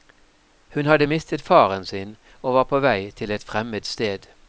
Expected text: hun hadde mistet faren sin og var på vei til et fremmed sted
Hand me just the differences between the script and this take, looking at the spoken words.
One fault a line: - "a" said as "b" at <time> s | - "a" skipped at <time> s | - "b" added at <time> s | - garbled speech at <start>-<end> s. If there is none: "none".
none